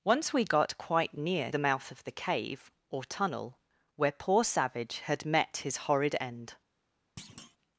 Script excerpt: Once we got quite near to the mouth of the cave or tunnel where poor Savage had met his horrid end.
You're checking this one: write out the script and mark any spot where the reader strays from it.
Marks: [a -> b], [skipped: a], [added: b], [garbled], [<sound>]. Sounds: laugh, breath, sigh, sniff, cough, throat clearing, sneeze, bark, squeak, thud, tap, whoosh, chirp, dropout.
Once we got quite near [skipped: to] the mouth of the cave or tunnel where poor Savage had met his horrid end. [thud]